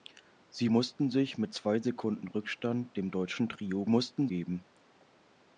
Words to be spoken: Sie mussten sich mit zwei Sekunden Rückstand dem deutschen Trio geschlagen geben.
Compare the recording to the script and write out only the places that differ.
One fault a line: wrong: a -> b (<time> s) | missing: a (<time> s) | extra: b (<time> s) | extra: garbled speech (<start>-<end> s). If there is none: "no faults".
wrong: geschlagen -> mussten (3.9 s)